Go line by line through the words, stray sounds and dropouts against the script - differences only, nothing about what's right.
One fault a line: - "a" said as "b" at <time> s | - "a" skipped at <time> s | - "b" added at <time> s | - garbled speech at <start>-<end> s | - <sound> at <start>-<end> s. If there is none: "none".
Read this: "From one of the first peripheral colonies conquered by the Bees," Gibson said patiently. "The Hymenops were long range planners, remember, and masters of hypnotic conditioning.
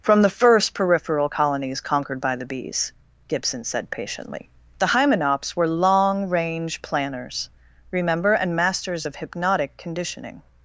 - "one of" skipped at 0.2 s